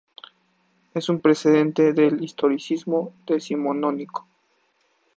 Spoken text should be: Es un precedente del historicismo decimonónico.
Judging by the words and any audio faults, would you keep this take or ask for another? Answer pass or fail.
pass